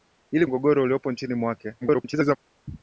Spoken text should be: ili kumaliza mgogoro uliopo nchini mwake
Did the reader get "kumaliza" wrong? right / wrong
wrong